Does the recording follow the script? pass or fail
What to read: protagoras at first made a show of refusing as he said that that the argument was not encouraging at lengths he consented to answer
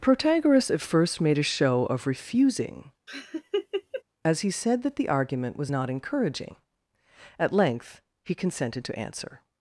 fail